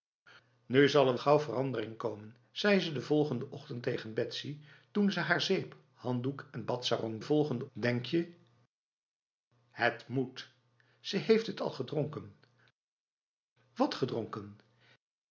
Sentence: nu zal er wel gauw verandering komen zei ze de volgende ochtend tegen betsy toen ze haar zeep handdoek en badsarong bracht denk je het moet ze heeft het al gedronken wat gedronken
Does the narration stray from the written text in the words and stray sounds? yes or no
yes